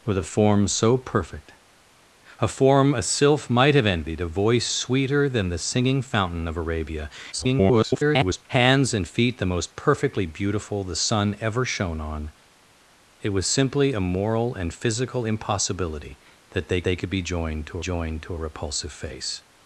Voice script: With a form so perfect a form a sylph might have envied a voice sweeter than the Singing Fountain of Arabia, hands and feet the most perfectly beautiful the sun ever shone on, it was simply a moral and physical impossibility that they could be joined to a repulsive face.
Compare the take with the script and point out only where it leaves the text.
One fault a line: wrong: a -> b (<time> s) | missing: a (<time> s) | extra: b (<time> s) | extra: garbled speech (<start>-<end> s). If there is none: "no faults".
extra: garbled speech (7.3-8.5 s)
extra: they (16.8 s)
extra: joined to (17.8 s)